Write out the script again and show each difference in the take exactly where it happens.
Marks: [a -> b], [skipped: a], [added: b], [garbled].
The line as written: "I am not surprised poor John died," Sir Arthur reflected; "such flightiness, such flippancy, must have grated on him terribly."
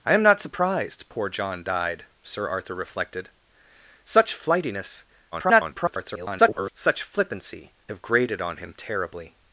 "I am not surprised poor John died," Sir Arthur reflected; "such flightiness, [garbled] such flippancy, [skipped: must] have grated on him terribly."